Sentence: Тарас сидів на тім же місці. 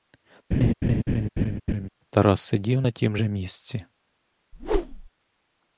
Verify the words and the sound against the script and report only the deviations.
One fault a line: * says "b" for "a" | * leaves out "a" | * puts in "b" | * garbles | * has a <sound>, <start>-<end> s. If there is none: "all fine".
* has a laugh, 0.5-1.9 s
* has a whoosh, 4.5-5.1 s